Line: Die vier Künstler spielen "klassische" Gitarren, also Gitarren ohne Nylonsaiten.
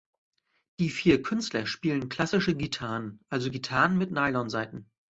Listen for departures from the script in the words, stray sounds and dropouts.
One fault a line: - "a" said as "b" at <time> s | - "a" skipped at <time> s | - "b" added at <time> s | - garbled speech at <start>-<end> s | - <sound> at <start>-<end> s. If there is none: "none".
- "ohne" said as "mit" at 4.0 s